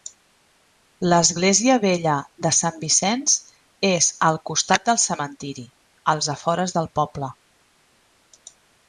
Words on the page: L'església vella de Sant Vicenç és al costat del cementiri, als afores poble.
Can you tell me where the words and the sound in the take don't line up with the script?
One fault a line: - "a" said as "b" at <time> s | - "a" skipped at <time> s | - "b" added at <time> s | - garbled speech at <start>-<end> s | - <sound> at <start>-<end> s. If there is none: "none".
- "del" added at 6.8 s